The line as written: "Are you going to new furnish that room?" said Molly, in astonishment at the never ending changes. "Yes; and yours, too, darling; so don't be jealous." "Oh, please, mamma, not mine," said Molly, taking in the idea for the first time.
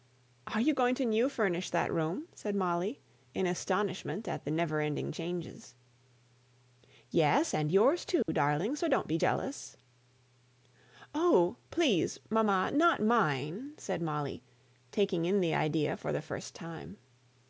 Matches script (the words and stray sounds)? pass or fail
fail